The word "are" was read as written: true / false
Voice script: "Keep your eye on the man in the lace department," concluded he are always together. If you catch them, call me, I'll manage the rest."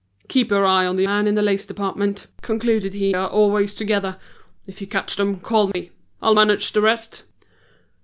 true